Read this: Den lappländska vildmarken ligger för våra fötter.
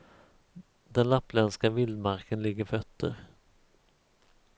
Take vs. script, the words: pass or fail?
fail